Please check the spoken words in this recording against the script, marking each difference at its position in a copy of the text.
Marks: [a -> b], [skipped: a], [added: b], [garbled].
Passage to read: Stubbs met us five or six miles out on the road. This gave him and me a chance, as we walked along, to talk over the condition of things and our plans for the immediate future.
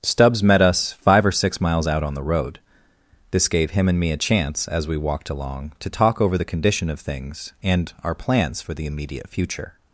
Stubbs met us five or six miles out on the road. This gave him and me a chance, as we walked along, to talk over the condition of things and our plans for the immediate future.